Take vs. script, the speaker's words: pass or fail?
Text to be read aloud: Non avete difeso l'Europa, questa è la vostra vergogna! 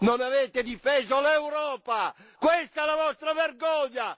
pass